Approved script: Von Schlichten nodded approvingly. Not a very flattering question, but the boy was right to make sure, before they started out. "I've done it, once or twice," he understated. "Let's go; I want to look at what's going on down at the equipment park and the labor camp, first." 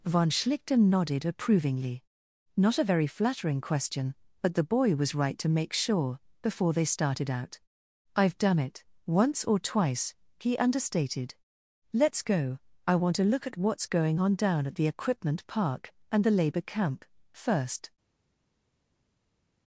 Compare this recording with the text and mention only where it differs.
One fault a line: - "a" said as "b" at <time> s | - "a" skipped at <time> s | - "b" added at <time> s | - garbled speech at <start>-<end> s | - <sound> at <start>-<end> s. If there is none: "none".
none